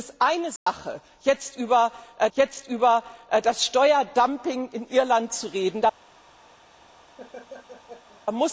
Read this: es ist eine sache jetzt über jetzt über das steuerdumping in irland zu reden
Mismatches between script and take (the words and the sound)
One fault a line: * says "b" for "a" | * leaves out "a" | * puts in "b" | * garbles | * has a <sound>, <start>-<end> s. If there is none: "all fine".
* has a dropout, 0.6-0.7 s
* has a laugh, 7.2-8.2 s